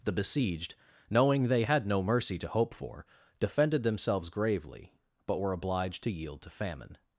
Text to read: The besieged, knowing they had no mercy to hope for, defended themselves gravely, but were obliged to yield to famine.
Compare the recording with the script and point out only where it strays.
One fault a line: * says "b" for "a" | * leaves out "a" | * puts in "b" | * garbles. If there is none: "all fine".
all fine